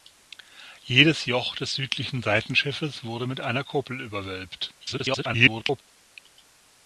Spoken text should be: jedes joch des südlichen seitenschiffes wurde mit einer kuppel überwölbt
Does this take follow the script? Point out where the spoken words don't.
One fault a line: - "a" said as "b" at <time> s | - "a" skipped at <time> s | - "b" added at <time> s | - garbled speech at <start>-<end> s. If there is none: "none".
- garbled speech at 4.8-5.8 s